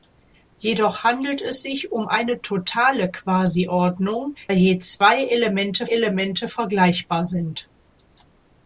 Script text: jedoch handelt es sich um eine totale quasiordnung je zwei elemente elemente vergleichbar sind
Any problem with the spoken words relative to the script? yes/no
no